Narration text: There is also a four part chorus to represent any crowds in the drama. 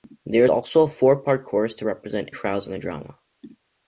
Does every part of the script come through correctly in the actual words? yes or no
no